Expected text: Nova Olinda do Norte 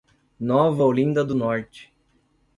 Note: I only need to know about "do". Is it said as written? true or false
true